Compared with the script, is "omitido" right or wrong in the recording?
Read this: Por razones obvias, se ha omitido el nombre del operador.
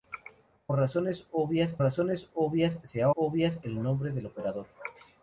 wrong